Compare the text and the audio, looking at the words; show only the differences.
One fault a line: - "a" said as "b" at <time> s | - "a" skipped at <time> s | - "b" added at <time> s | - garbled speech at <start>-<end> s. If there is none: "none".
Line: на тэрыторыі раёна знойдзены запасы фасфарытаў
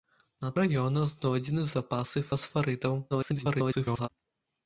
- "тэрыторыі" skipped at 0.5 s
- garbled speech at 3.1-4.1 s